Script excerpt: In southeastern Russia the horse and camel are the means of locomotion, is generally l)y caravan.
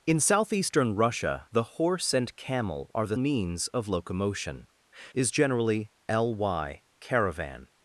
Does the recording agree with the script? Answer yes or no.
yes